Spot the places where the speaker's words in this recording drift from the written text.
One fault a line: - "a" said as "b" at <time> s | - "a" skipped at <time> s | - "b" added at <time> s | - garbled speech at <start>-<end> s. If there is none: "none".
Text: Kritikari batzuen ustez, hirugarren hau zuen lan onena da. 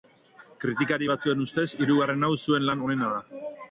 none